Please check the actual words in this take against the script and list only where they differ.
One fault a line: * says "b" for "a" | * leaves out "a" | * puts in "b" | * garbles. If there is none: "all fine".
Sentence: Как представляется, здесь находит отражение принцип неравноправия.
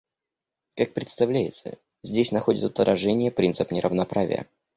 all fine